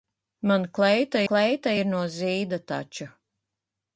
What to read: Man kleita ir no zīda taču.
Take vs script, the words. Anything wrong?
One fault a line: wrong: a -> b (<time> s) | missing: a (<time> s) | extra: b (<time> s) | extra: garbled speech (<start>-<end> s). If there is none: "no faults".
extra: kleita (1.3 s)